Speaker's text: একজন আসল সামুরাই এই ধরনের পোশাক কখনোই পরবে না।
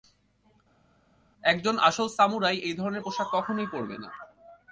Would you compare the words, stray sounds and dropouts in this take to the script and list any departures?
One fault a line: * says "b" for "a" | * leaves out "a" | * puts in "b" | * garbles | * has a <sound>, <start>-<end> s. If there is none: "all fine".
all fine